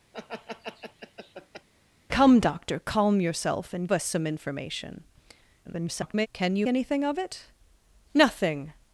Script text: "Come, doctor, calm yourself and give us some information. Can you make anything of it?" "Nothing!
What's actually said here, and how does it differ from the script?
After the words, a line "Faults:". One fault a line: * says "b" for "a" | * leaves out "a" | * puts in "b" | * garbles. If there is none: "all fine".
"Come, doctor, calm yourself and us some information. [garbled] Can you anything of it?" "Nothing!
Faults:
* leaves out "give"
* garbles
* leaves out "make"